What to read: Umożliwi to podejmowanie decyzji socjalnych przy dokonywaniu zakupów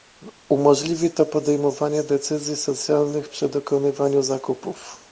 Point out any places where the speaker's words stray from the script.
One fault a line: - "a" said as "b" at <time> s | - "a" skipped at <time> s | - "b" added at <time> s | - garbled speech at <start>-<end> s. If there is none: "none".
none